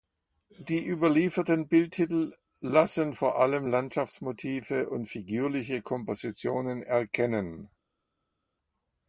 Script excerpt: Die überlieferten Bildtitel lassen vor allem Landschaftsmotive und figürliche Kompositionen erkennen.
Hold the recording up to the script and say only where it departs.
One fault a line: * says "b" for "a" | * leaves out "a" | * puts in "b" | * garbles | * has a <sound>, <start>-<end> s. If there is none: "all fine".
all fine